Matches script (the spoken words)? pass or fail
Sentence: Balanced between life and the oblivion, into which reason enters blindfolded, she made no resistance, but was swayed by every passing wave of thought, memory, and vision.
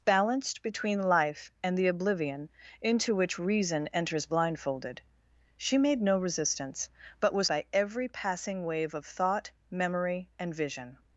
fail